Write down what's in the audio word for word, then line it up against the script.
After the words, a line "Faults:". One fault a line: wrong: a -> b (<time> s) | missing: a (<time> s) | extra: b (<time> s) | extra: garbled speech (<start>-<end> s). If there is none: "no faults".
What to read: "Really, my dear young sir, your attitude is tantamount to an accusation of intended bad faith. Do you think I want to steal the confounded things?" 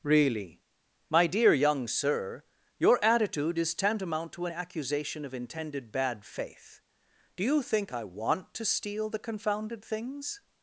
"Really, my dear young sir, your attitude is tantamount to an accusation of intended bad faith. Do you think I want to steal the confounded things?"
Faults:
no faults